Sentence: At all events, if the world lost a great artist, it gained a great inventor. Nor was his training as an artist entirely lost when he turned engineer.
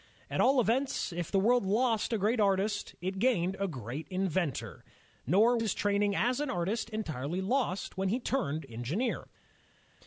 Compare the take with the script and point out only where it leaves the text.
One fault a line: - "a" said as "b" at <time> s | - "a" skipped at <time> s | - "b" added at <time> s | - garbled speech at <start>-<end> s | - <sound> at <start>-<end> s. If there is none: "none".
- "was" skipped at 5.6 s